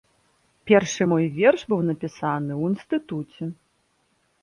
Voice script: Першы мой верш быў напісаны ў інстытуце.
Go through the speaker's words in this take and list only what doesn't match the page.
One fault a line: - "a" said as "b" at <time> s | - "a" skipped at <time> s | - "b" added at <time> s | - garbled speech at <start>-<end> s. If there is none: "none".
none